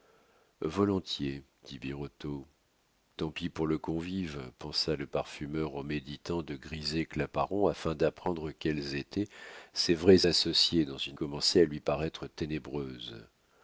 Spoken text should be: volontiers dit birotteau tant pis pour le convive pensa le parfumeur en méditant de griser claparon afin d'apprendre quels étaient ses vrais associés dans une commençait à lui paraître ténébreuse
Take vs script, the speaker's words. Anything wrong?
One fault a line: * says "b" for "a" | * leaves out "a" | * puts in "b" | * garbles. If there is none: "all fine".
all fine